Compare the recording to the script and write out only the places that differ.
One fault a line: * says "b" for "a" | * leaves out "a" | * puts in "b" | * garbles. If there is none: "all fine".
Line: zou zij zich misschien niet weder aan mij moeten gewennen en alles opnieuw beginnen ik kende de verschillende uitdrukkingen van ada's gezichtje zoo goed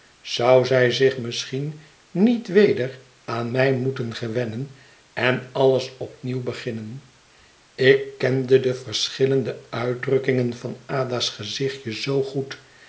all fine